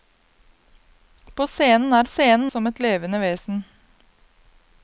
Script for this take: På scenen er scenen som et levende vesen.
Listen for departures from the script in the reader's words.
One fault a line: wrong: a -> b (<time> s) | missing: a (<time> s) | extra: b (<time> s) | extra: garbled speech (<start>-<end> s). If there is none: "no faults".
no faults